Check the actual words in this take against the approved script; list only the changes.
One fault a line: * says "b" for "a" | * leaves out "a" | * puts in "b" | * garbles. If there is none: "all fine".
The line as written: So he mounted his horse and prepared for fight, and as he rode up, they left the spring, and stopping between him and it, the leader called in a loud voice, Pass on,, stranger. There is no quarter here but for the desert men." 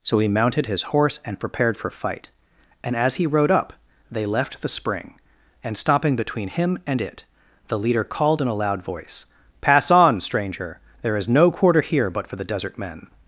all fine